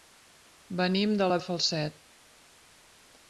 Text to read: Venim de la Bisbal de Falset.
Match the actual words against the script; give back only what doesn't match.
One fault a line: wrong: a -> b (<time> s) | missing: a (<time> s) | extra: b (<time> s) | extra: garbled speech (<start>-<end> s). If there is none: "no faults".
missing: Bisbal (1.4 s)